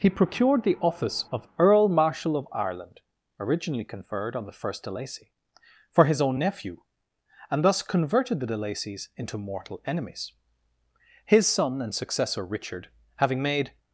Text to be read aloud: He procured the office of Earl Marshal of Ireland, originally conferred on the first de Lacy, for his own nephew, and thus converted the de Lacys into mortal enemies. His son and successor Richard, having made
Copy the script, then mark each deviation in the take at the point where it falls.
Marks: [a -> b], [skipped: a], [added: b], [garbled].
He procured the office of Earl Marshal of Ireland, originally conferred on the first de Lacy, for his own nephew, and thus converted the de Lacys into mortal enemies. His son and successor Richard, having made